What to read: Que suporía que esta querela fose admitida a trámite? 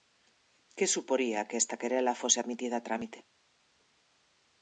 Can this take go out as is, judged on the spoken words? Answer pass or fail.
pass